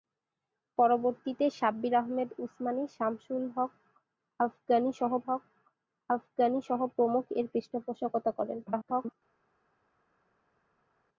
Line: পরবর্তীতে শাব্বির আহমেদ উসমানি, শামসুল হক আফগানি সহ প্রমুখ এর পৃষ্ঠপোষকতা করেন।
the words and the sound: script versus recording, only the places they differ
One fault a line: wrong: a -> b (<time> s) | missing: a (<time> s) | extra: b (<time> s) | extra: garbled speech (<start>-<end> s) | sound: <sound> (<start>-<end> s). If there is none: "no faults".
extra: হক আফগানি সহ (5.3 s)
extra: garbled speech (8.7-9.1 s)